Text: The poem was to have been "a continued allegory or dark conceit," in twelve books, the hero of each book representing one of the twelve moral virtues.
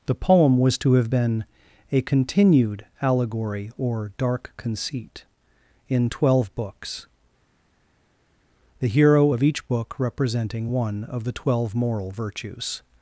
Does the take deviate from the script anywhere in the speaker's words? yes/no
no